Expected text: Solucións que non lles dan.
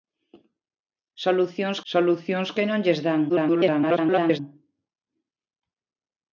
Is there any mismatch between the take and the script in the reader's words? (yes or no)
yes